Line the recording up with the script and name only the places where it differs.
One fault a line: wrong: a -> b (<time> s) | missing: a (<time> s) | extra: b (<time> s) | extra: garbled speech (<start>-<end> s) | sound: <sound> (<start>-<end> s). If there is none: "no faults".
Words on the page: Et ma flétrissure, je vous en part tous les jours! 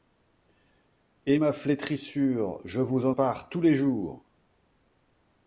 no faults